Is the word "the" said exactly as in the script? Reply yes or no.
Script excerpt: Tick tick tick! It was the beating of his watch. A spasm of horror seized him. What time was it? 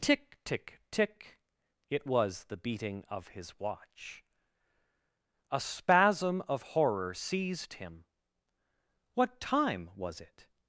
yes